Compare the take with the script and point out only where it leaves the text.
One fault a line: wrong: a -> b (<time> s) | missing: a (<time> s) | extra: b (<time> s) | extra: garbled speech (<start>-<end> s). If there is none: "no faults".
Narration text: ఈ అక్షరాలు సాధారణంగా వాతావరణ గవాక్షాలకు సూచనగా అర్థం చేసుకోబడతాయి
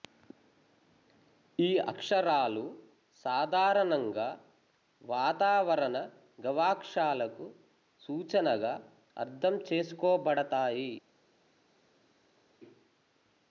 no faults